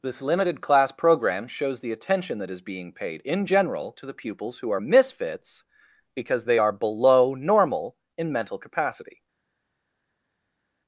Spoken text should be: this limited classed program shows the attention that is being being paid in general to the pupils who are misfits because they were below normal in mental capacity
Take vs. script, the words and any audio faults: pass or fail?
fail